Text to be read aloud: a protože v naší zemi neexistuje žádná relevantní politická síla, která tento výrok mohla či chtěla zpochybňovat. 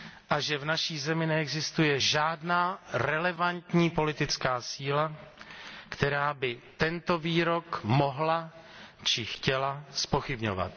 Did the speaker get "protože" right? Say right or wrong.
wrong